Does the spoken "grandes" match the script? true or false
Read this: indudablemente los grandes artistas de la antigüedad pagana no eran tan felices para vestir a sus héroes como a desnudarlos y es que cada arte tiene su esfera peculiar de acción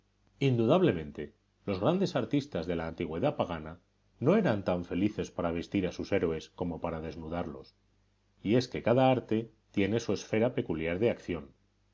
true